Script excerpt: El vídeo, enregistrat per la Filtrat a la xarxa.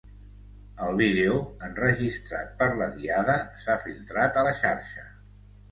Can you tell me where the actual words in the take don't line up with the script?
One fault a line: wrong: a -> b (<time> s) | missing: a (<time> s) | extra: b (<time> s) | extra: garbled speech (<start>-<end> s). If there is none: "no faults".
extra: Diada s'ha (3.0 s)